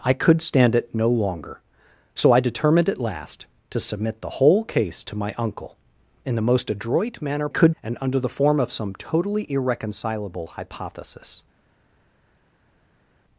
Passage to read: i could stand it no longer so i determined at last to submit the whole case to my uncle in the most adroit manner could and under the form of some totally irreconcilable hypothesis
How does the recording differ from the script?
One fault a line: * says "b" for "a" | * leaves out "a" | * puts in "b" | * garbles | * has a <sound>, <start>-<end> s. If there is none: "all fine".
all fine